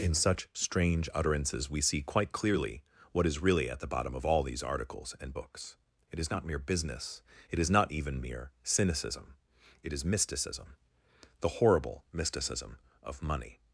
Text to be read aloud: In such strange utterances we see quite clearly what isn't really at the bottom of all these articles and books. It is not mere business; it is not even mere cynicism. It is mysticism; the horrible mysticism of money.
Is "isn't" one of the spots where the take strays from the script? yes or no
yes